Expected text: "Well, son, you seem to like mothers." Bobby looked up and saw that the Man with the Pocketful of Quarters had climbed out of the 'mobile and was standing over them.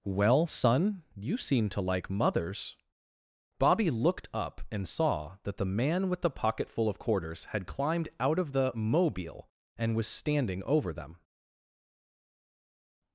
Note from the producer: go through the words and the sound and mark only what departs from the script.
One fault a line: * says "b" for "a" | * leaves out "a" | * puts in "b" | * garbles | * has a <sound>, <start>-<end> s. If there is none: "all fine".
all fine